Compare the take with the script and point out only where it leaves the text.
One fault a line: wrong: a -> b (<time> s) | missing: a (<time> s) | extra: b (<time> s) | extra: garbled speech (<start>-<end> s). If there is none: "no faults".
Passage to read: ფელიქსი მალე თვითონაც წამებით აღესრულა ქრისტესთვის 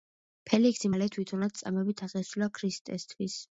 no faults